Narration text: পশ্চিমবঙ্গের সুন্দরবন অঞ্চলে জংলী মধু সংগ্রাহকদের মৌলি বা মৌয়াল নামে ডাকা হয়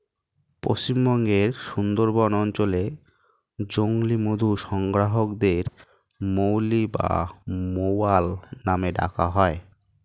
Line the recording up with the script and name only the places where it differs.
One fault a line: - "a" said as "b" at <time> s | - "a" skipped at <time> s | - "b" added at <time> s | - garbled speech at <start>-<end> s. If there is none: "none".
none